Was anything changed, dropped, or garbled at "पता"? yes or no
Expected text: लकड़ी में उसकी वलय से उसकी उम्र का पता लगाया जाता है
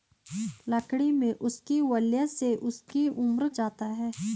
yes